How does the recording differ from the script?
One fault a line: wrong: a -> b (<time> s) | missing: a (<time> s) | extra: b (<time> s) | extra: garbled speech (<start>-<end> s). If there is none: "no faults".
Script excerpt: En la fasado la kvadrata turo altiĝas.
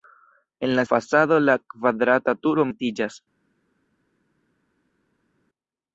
no faults